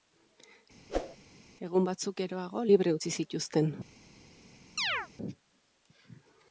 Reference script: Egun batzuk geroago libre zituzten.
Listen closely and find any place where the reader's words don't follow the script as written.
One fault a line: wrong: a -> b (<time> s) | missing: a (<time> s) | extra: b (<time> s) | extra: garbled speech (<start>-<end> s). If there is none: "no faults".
extra: utzi (3.0 s)